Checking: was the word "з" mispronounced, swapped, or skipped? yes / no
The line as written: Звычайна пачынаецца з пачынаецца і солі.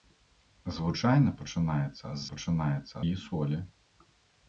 no